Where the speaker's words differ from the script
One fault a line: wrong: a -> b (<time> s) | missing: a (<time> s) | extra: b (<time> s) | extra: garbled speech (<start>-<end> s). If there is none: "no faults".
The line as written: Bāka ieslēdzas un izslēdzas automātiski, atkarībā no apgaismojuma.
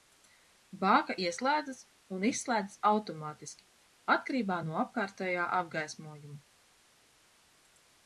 extra: apkārtējā (4.8 s)